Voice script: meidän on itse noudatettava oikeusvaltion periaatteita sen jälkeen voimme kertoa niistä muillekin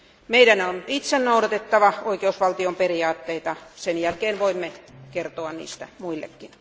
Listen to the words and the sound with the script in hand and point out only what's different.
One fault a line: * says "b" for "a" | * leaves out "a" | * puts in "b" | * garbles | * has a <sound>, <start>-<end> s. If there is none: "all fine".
all fine